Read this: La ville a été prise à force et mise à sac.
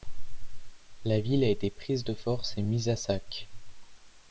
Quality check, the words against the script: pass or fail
fail